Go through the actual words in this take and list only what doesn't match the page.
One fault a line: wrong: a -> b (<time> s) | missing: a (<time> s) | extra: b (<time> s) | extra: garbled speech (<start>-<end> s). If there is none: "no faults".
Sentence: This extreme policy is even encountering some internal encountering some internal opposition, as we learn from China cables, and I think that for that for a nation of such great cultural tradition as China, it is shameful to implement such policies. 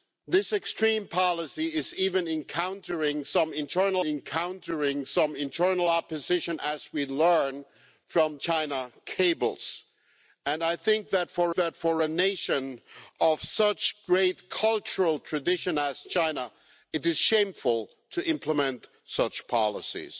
no faults